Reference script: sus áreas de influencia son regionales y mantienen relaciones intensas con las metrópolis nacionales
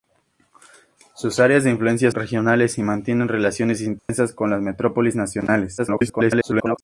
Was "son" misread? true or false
true